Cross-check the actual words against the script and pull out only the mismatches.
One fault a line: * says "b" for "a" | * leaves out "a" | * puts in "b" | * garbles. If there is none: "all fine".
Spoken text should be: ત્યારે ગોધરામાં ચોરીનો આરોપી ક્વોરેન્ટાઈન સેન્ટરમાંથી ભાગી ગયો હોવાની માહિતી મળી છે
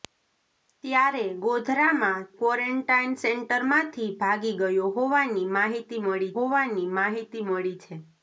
* leaves out "ચોરીનો આરોપી"
* puts in "હોવાની માહિતી મળી"